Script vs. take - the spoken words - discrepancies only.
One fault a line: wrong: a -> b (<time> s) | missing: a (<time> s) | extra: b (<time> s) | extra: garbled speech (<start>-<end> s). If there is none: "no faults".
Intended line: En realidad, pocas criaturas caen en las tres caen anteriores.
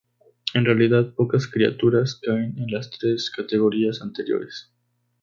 wrong: caen -> categorías (3.3 s)